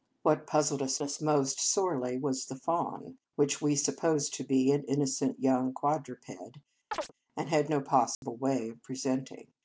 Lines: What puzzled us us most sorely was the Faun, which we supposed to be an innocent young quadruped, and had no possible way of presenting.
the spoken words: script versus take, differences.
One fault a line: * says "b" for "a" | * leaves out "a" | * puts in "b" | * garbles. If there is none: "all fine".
all fine